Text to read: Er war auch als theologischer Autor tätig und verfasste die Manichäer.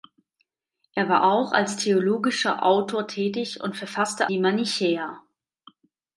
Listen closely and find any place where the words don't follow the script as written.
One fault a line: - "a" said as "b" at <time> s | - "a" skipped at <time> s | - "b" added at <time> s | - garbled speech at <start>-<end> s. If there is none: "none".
none